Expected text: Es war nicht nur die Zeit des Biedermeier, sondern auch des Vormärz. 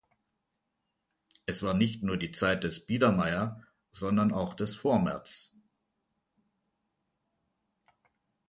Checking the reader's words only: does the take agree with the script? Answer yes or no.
yes